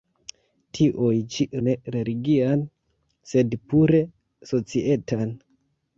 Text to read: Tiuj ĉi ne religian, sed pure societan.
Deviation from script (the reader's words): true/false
false